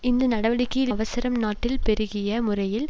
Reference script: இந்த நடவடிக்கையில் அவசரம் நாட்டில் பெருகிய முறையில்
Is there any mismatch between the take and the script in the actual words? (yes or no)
no